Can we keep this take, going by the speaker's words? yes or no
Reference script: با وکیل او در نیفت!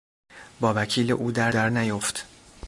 no